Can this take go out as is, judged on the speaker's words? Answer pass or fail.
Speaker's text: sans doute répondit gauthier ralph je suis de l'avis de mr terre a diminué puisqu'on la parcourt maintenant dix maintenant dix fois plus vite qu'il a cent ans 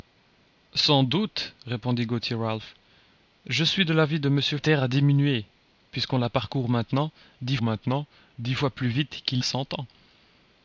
pass